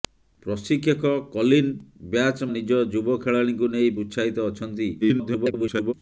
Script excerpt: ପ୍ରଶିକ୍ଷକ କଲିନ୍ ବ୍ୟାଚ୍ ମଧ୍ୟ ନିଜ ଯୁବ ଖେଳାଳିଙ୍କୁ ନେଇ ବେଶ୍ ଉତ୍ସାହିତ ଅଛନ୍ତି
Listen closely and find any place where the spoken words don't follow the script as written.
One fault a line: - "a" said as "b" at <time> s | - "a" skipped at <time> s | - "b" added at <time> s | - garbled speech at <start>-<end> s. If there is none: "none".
- "ମଧ୍ୟ" skipped at 2.4 s
- "ବେଶ୍" skipped at 3.9 s
- garbled speech at 5.0-5.9 s